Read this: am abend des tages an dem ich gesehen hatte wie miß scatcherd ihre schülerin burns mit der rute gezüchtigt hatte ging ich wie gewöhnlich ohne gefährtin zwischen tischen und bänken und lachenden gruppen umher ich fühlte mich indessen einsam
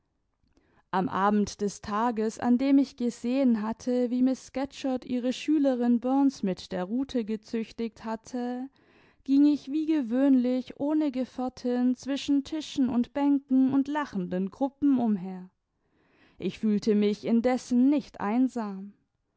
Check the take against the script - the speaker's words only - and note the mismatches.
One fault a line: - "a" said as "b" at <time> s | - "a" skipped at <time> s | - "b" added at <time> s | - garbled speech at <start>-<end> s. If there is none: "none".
- "nicht" added at 17.9 s